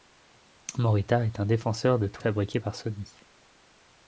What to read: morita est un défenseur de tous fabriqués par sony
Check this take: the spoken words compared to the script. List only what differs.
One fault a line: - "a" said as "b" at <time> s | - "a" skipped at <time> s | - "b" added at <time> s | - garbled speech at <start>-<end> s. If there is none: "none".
none